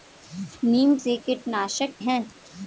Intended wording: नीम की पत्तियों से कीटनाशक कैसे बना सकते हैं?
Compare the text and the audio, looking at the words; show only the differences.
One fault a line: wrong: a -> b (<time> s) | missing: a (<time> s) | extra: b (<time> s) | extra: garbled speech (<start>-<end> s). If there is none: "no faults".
missing: की पत्तियों (0.9 s)
missing: कैसे बना सकते (1.9 s)